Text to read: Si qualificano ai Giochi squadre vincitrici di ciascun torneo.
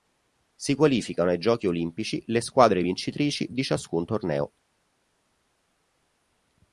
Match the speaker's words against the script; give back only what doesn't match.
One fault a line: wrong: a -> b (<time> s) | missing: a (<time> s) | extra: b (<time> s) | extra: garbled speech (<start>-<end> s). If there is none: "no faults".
extra: olimpici le (1.7 s)